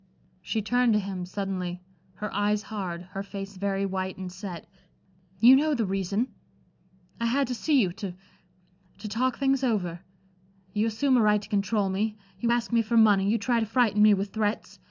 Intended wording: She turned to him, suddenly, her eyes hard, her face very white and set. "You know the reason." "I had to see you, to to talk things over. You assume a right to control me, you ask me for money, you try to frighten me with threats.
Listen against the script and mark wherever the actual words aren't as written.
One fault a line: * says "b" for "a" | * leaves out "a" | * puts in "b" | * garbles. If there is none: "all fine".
all fine